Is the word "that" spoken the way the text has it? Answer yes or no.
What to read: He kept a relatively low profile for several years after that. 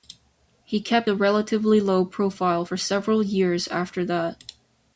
yes